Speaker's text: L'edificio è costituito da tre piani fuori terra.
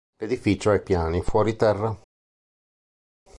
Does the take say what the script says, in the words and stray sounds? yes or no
no